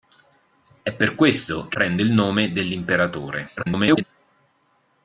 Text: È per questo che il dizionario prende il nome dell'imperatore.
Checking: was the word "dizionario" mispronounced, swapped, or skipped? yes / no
yes